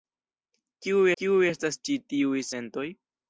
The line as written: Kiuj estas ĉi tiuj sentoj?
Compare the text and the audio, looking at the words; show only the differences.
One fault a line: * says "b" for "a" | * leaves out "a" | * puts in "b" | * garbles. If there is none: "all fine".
* puts in "kiuj"